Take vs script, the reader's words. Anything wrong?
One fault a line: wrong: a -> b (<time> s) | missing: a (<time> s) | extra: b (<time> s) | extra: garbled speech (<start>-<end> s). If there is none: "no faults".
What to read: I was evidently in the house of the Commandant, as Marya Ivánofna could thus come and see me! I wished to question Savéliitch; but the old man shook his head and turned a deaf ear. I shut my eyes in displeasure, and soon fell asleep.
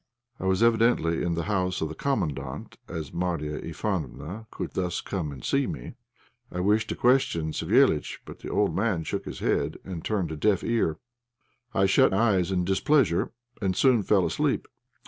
missing: my (12.2 s)